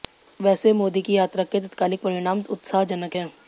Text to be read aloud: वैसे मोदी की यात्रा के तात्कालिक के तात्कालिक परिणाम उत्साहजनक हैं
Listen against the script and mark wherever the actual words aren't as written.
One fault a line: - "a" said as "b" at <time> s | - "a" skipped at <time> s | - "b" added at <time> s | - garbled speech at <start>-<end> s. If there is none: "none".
- "के तात्कालिक" skipped at 2.0 s